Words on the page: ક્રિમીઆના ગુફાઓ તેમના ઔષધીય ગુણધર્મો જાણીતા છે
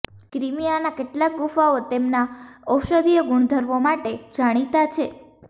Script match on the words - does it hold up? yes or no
no